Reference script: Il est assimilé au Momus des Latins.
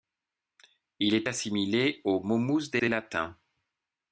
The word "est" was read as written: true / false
true